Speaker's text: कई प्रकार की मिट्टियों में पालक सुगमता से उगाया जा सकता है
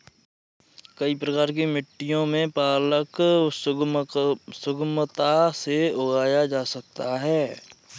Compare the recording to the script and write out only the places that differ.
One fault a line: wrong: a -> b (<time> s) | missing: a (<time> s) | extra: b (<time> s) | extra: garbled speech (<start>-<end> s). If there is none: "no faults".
no faults